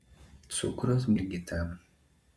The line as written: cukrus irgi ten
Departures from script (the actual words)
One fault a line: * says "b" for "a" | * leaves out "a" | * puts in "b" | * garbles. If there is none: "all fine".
all fine